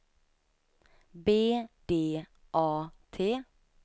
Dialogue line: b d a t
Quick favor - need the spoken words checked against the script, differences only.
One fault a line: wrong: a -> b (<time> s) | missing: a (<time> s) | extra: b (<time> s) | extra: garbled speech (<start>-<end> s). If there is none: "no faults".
no faults